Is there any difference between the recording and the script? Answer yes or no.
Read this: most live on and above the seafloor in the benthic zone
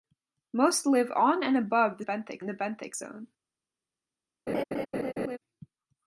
yes